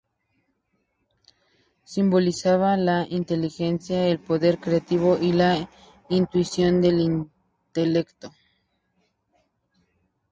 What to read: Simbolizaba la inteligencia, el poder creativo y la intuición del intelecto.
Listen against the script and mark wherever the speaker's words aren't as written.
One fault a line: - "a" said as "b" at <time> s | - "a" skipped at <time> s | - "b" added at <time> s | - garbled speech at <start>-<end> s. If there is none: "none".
none